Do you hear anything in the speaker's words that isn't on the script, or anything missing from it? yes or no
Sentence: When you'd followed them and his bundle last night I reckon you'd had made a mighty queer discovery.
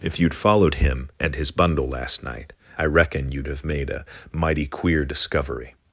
yes